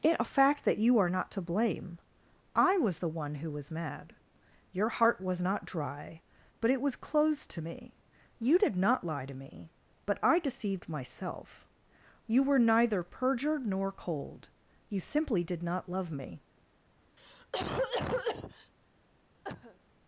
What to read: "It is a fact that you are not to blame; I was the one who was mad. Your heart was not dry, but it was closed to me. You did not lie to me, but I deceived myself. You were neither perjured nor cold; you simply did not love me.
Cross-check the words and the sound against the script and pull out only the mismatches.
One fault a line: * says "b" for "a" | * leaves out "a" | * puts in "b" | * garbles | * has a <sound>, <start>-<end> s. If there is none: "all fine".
* leaves out "is"
* has a cough, 17.2-18.7 s
* has a cough, 19.4-19.8 s